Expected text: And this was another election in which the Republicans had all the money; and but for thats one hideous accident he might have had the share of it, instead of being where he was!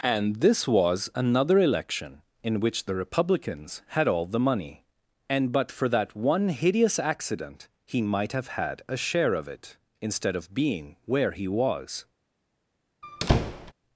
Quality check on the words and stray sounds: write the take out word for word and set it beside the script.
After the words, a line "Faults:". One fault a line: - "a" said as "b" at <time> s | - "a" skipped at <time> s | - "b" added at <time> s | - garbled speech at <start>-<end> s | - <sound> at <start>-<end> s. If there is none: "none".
And this was another election in which the Republicans had all the money; and but for that one hideous accident he might have had a share of it, instead of being where he was!
Faults:
- "thats" said as "that" at 5.9 s
- "the" said as "a" at 8.9 s
- squeak at 13.0-13.7 s